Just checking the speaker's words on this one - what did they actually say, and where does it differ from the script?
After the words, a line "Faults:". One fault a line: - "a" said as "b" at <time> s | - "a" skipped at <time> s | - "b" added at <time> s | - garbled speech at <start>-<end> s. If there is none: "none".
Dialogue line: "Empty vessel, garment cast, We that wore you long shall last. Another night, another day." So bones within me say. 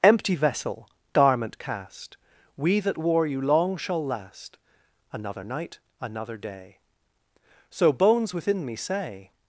"Empty vessel, garment cast, We that wore you long shall last. Another night, another day." So bones within me say.
Faults:
none